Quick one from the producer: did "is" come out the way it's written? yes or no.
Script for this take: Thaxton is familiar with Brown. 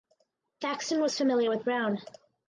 no